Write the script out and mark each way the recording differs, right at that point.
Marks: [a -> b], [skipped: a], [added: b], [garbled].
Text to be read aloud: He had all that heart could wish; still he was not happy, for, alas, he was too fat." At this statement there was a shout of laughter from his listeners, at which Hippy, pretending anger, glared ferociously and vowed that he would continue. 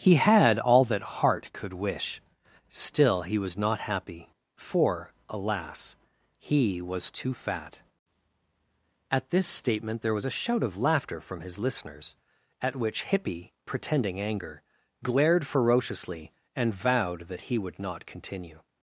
He had all that heart could wish; still he was not happy, for, alas, he was too fat." At this statement there was a shout of laughter from his listeners, at which Hippy, pretending anger, glared ferociously and vowed that he would [added: not] continue.